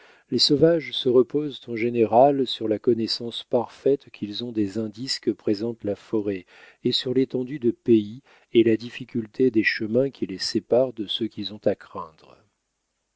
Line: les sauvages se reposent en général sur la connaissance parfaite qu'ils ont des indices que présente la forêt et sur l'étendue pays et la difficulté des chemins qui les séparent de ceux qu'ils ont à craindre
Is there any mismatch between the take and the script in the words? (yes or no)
yes